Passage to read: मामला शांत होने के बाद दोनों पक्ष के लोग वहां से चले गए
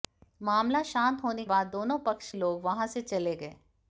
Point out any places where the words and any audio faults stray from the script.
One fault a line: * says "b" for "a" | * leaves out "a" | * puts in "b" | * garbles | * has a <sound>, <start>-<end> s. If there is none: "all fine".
* leaves out "के"
* leaves out "के"